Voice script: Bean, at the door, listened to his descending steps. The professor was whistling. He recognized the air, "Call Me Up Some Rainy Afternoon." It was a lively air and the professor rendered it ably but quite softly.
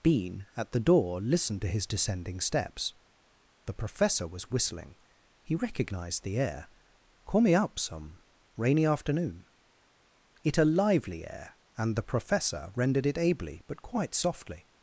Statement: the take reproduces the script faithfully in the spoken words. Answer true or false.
false